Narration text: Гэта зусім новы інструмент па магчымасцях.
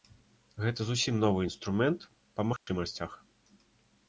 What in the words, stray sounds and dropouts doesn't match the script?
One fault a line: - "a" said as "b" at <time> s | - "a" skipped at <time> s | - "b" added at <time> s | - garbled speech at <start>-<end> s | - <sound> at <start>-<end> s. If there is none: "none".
- dropout at 2.6-2.7 s